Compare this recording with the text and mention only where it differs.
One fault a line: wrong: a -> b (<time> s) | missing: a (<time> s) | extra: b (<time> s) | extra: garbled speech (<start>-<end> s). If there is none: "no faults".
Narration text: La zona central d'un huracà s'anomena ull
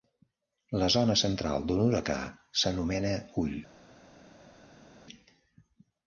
no faults